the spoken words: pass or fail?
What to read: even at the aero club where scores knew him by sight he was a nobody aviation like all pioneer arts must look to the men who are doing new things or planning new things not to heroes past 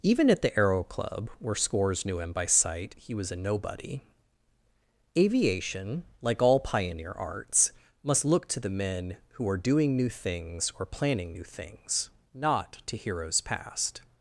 pass